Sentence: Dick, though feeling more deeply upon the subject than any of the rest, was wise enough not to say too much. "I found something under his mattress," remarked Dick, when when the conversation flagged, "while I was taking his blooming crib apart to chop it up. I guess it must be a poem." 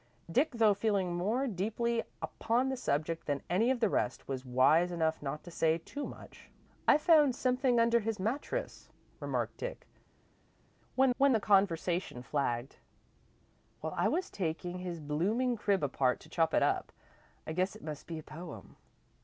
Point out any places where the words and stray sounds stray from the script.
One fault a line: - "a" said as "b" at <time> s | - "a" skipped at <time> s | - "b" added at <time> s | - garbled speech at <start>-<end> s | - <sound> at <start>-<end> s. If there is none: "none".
none